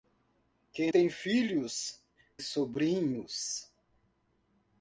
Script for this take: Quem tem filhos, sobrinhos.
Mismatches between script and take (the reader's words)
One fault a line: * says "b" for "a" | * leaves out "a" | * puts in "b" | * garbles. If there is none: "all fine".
all fine